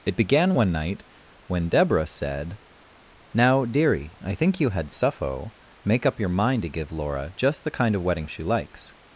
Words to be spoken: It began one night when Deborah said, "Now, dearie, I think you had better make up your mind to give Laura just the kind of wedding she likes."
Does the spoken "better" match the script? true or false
false